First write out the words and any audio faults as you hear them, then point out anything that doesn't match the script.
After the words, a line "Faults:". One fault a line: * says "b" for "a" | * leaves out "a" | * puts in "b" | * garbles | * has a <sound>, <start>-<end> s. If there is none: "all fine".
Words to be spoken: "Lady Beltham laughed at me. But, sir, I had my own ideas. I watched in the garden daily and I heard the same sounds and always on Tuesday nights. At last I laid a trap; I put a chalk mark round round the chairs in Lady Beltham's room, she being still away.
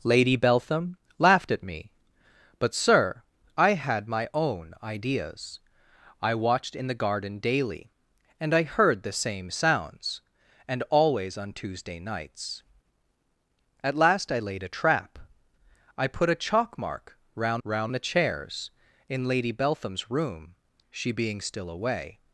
"Lady Beltham laughed at me. But, sir, I had my own ideas. I watched in the garden daily and I heard the same sounds and always on Tuesday nights. At last I laid a trap; I put a chalk mark round round the chairs in Lady Beltham's room, she being still away.
Faults:
all fine